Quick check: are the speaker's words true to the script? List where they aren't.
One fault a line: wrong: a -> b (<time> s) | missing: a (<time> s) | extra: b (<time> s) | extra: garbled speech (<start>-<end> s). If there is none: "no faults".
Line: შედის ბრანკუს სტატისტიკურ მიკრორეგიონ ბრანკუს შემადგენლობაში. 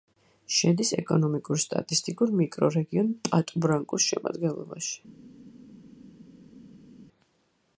wrong: ბრანკუს -> ეკონომიკურ (1.0 s)
extra: პატუ (3.3 s)